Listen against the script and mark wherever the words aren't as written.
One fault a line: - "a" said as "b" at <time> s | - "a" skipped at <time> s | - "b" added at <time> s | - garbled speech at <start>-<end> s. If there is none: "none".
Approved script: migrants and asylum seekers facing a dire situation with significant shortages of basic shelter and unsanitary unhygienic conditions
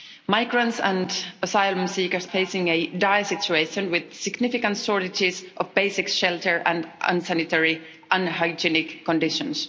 none